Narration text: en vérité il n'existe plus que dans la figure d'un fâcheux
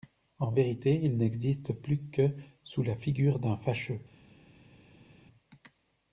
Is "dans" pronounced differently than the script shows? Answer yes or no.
yes